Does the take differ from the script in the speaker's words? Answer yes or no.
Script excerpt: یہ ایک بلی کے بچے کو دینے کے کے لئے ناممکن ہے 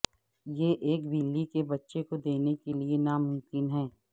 yes